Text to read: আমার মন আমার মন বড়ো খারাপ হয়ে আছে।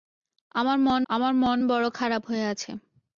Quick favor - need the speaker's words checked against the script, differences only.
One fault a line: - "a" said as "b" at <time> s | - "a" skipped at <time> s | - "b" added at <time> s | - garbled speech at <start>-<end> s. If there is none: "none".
none